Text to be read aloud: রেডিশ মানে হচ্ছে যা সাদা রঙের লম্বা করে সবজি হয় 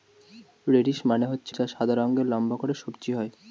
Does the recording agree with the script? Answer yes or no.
yes